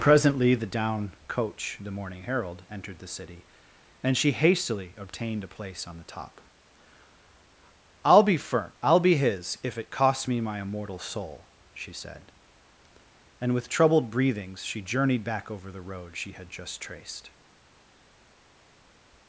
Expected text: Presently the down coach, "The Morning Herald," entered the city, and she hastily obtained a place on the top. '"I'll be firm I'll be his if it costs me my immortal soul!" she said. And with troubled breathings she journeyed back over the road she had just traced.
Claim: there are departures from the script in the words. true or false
false